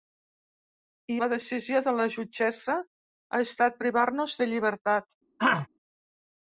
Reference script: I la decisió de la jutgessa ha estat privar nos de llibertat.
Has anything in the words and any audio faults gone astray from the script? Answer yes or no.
yes